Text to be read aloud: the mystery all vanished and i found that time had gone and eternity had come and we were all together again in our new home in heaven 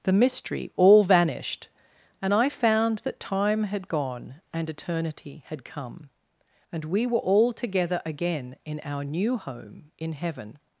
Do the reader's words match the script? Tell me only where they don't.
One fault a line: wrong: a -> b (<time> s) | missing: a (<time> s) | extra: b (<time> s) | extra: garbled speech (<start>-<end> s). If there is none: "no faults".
no faults